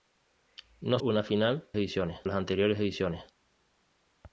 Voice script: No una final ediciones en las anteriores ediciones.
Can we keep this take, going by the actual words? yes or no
yes